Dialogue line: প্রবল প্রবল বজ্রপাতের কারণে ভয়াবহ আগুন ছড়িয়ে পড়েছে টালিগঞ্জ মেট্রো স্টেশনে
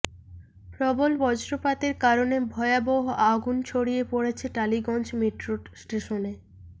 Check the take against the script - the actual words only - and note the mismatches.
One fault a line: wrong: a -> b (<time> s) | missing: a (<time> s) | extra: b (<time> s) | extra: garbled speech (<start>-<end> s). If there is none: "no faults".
missing: প্রবল (1.1 s)